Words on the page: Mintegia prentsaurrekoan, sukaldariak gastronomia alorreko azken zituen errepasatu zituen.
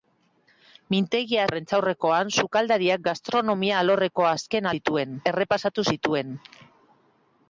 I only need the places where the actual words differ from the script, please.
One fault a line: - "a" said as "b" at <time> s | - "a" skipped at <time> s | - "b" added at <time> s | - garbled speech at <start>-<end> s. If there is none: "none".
none